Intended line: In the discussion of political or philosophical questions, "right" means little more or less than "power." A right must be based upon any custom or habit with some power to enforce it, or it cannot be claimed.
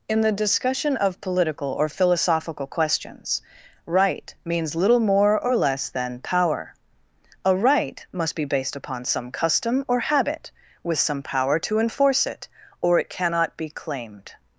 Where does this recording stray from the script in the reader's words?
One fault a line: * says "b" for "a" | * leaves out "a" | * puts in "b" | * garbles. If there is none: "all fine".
* says "some" for "any"